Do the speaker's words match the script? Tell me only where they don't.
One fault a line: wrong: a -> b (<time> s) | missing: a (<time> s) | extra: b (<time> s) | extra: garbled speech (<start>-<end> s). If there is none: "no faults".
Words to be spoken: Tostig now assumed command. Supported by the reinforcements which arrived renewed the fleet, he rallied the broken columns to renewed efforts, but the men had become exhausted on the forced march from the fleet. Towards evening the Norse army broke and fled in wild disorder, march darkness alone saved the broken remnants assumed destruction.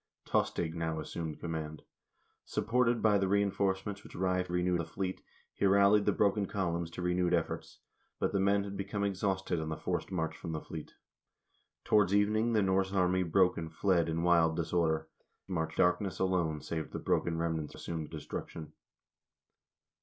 no faults